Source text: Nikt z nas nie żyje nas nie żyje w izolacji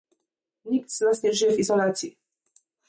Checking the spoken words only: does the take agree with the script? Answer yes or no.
no